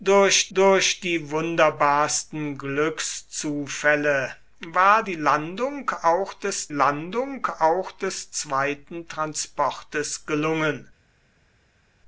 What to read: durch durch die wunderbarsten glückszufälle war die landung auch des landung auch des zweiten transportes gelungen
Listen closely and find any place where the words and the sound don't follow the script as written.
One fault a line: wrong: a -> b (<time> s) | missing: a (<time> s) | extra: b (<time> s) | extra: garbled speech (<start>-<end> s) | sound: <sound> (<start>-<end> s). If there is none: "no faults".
no faults